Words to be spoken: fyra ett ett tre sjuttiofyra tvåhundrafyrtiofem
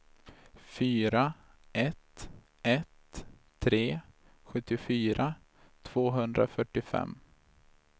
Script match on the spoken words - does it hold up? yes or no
yes